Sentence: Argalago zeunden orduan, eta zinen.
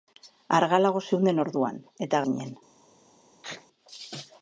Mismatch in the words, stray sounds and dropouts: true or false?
true